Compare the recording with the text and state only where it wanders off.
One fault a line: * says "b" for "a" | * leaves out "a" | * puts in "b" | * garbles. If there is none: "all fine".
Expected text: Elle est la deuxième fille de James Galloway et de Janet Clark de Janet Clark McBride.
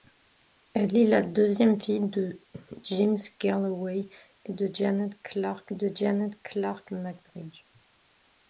all fine